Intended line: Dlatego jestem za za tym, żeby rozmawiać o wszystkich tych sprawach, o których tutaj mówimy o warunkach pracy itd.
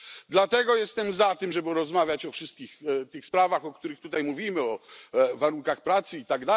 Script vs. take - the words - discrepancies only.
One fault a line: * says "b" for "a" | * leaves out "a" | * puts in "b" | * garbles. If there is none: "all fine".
* leaves out "za"